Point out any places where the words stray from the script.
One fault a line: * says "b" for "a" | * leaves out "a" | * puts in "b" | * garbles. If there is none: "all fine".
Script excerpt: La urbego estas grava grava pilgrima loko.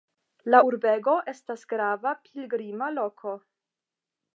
* leaves out "grava"